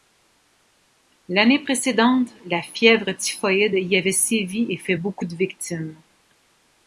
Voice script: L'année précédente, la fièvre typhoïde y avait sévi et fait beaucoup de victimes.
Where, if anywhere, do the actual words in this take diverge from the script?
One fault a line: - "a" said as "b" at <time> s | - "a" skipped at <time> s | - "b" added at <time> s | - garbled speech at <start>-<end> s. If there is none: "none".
none